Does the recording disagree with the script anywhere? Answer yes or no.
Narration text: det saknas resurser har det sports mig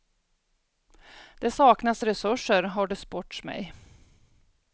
no